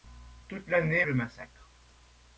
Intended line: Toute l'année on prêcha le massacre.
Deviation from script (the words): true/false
true